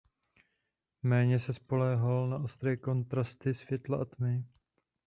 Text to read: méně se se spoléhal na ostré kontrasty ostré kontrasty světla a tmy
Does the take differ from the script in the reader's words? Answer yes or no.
yes